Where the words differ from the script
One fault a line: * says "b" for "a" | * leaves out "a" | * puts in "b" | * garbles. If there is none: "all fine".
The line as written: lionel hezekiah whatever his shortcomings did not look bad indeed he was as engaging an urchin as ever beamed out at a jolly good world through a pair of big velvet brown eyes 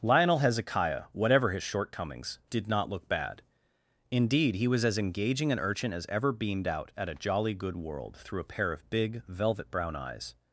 all fine